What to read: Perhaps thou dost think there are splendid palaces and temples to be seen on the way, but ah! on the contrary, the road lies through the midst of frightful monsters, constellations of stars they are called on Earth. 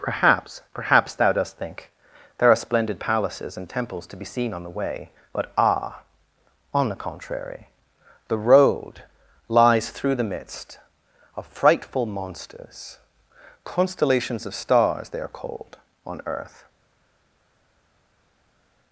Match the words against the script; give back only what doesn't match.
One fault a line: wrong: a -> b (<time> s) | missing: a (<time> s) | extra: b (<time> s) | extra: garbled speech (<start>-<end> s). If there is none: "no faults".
extra: perhaps (0.7 s)